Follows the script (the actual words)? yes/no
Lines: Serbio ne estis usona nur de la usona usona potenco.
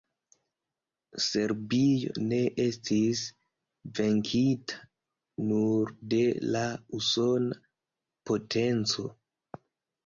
no